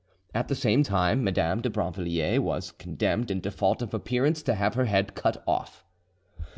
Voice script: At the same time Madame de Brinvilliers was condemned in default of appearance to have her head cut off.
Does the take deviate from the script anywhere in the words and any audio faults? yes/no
no